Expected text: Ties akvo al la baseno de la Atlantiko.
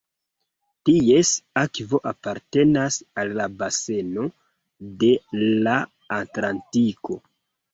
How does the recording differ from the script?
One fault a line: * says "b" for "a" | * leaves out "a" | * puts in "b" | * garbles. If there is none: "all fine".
* puts in "apartenas"